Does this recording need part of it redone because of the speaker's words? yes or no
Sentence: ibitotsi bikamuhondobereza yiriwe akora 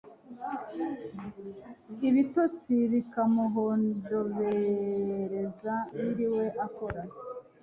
no